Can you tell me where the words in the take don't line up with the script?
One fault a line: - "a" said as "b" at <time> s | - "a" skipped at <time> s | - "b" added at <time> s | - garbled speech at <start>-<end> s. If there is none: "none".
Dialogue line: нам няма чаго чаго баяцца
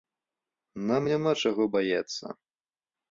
- "чаго" skipped at 1.6 s